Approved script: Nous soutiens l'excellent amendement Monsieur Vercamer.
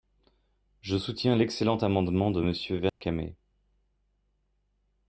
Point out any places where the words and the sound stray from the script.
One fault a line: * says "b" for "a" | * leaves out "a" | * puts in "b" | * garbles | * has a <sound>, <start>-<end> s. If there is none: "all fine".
* says "Je" for "Nous"
* puts in "de"
* has a dropout, 2.9-3.0 s